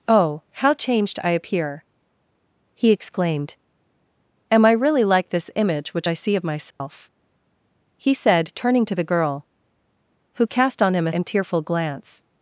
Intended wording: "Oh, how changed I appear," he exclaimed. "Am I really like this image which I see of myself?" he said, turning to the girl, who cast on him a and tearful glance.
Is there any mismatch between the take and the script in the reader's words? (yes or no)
no